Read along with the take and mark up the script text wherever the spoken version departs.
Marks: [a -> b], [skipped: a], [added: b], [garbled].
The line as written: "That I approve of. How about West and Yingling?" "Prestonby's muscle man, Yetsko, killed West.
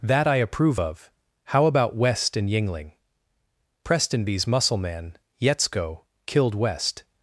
"That I approve of. How about West and Yingling?" "Prestonby's muscle man, Yetsko, killed West.